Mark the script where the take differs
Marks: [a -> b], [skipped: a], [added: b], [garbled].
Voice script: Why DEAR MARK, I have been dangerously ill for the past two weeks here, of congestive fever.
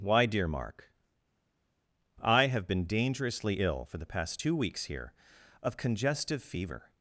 Why DEAR MARK, I have been dangerously ill for the past two weeks here, of congestive fever.